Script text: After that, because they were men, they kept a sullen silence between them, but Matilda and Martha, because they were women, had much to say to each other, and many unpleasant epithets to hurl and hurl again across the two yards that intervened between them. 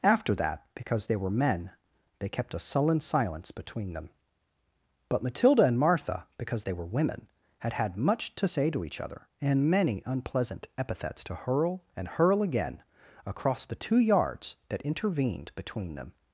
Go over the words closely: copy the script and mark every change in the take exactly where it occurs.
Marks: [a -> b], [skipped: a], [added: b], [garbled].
After that, because they were men, they kept a sullen silence between them, but Matilda and Martha, because they were women, had [added: had] much to say to each other, and many unpleasant epithets to hurl and hurl again across the two yards that intervened between them.